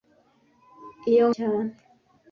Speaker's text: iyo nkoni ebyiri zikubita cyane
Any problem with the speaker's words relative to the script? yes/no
yes